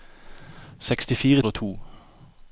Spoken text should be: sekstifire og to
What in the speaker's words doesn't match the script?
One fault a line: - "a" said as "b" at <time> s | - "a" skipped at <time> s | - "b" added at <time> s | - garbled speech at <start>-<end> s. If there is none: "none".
none